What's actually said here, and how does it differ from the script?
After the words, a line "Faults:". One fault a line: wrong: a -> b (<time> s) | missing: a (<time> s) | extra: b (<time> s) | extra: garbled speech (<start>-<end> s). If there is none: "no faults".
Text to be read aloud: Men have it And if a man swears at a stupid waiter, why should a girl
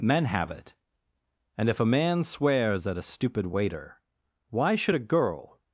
Men have it And if a man swears at a stupid waiter, why should a girl
Faults:
no faults